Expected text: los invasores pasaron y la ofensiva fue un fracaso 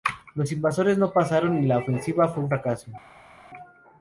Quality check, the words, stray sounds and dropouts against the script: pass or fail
fail